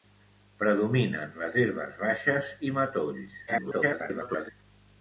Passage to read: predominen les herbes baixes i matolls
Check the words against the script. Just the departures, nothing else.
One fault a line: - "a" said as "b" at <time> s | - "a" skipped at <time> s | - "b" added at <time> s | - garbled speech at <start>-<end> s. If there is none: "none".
- garbled speech at 3.5-4.5 s